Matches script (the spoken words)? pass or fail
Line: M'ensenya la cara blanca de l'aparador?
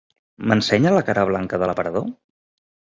pass